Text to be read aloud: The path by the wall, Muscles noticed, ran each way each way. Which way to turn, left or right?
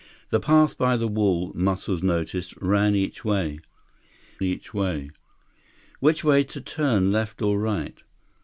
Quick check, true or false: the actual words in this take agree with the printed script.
true